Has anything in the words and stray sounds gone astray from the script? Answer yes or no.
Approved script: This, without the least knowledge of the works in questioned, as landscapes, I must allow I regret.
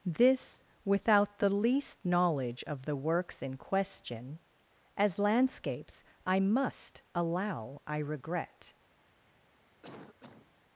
yes